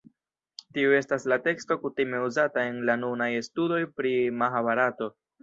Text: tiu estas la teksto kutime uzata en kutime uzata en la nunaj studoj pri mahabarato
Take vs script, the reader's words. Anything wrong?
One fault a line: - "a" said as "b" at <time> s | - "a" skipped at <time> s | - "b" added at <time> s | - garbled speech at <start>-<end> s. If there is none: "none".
- "kutime uzata en" skipped at 2.8 s